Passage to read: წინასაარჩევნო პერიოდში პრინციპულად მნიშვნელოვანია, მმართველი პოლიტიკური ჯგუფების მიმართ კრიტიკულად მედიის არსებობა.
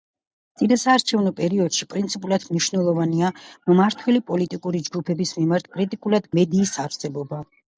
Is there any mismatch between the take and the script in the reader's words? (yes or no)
no